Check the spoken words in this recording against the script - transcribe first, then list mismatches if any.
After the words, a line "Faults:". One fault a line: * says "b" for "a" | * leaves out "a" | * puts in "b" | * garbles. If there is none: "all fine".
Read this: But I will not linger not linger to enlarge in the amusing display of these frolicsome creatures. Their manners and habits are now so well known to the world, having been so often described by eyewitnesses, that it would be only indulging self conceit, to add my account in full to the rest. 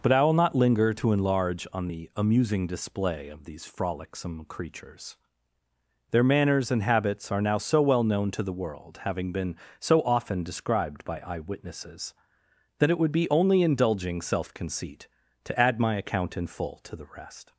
But I will not linger to enlarge on the amusing display of these frolicsome creatures. Their manners and habits are now so well known to the world, having been so often described by eyewitnesses, that it would be only indulging self conceit, to add my account in full to the rest.
Faults:
* leaves out "not linger"
* says "on" for "in"